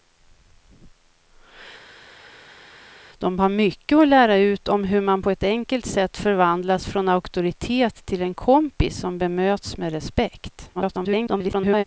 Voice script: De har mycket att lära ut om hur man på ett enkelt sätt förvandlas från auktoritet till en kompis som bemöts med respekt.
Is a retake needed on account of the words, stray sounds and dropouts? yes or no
yes